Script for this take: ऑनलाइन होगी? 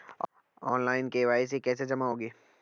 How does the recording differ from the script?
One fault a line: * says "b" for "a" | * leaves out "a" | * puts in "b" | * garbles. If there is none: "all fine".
* puts in "के.वाई.सी कैसे जमा"